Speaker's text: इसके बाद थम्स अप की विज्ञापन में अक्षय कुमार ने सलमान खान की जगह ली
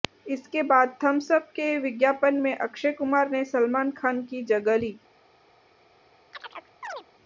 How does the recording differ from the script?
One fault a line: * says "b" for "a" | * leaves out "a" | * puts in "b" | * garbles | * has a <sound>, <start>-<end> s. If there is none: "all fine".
* says "के" for "की"
* has a chirp, 6.3-7.0 s